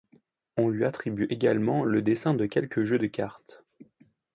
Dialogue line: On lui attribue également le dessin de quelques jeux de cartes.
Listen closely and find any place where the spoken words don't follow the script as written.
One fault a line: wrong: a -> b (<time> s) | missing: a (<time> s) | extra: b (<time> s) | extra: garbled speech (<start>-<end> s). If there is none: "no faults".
no faults